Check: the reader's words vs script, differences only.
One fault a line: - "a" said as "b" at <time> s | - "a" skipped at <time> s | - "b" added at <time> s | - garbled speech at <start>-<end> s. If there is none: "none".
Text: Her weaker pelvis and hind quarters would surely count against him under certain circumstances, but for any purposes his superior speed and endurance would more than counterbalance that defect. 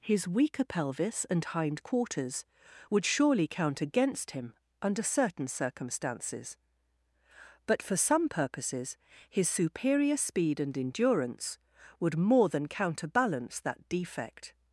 - "Her" said as "His" at 0.0 s
- "any" said as "some" at 8.0 s